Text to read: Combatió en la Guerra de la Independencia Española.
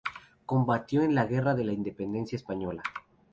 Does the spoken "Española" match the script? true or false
true